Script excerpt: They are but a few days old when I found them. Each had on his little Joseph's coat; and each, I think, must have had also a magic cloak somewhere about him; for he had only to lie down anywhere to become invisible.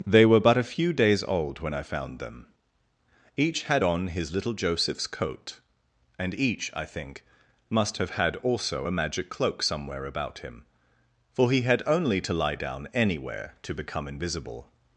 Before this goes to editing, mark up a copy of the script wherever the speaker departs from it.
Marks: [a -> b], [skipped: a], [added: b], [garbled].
They [are -> were] but a few days old when I found them. Each had on his little Joseph's coat; and each, I think, must have had also a magic cloak somewhere about him; for he had only to lie down anywhere to become invisible.